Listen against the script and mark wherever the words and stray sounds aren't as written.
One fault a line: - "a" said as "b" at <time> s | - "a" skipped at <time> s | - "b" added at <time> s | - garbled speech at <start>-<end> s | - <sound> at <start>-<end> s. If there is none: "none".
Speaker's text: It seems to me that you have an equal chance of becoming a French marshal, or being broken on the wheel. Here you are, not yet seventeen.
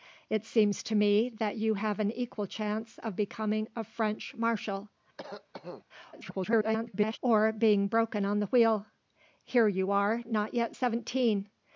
- cough at 5.2-5.9 s
- garbled speech at 6.1-7.2 s